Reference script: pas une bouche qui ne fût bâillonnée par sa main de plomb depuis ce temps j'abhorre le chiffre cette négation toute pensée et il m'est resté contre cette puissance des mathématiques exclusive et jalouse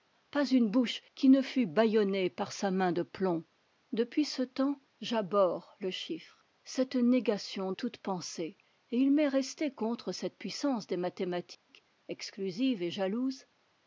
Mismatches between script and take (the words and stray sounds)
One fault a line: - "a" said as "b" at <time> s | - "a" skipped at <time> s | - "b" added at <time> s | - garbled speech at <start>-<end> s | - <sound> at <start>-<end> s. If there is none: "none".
- dropout at 11.5-11.7 s